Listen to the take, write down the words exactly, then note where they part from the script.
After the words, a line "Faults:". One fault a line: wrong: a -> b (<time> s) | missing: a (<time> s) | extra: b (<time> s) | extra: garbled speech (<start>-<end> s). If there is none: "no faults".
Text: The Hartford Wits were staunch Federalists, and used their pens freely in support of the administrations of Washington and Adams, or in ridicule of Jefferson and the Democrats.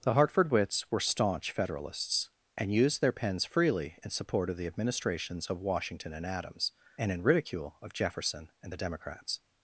The Hartford Wits were staunch Federalists, and used their pens freely in support of the administrations of Washington and Adams, and in ridicule of Jefferson and the Democrats.
Faults:
wrong: or -> and (7.0 s)